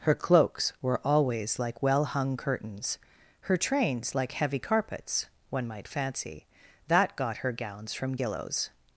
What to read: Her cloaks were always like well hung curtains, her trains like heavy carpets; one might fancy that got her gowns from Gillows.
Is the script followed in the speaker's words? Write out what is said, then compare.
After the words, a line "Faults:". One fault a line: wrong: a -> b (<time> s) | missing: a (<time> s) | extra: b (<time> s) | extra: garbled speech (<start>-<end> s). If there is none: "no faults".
Her cloaks were always like well hung curtains, her trains like heavy carpets; one might fancy that got her gowns from Gillows.
Faults:
no faults